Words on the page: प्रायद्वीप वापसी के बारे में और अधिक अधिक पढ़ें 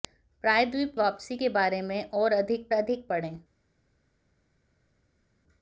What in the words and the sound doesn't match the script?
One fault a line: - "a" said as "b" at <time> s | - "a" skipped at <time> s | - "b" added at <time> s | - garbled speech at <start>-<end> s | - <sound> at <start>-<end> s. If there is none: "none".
none